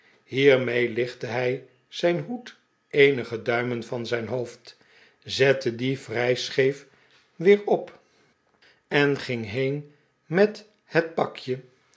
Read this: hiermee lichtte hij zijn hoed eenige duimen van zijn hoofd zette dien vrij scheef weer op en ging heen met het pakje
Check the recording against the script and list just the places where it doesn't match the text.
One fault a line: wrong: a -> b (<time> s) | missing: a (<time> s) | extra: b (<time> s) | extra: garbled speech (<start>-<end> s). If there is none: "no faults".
no faults